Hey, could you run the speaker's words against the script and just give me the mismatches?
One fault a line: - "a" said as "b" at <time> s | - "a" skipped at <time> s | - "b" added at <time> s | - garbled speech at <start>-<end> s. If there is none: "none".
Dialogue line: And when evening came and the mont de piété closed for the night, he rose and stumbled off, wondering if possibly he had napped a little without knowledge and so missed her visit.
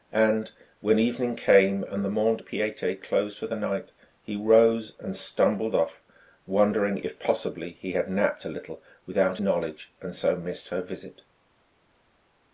none